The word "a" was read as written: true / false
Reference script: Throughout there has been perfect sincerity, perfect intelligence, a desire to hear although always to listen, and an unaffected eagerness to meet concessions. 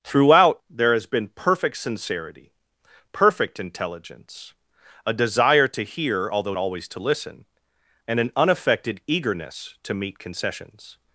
true